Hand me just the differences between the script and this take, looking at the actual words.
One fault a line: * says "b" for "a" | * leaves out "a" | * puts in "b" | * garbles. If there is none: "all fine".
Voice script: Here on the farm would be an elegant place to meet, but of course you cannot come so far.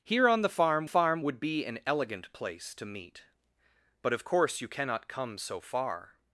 * puts in "farm"